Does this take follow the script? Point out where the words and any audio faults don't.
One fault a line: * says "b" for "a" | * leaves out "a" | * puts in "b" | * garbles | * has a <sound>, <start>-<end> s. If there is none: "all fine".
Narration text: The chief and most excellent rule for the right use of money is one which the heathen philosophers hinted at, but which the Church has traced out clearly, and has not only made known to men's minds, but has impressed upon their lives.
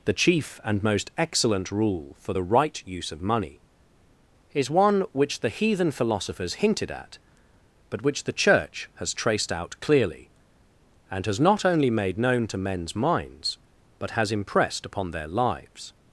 all fine